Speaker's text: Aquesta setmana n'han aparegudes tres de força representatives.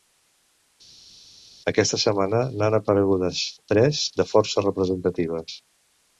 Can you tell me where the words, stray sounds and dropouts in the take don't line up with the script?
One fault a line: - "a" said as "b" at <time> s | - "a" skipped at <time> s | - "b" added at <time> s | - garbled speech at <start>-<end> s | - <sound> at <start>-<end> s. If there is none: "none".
none